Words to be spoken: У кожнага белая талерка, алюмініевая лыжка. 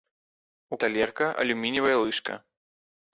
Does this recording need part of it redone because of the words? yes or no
yes